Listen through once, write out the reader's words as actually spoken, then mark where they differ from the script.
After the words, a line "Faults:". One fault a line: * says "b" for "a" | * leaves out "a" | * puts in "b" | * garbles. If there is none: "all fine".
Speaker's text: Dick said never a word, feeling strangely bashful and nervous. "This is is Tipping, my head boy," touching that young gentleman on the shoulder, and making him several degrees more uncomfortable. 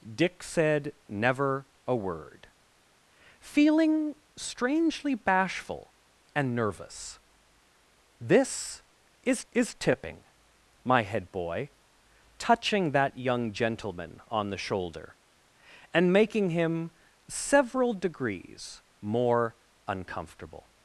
Dick said never a word, feeling strangely bashful and nervous. "This is is Tipping, my head boy," touching that young gentleman on the shoulder, and making him several degrees more uncomfortable.
Faults:
all fine